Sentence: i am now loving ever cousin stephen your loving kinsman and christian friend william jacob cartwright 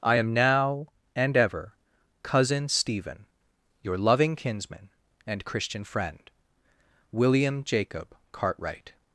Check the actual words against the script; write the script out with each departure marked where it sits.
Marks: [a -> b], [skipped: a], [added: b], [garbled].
i am now [loving -> and] ever cousin stephen your loving kinsman and christian friend william jacob cartwright